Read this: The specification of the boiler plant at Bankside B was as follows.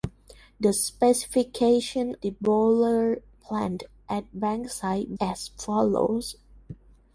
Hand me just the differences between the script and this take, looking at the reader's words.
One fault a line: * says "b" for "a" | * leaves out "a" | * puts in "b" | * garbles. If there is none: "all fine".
* leaves out "of"
* leaves out "B was"